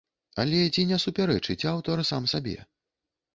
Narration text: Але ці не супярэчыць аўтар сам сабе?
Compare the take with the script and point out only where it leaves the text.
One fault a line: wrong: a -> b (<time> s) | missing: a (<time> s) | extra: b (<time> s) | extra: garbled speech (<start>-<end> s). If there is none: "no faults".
no faults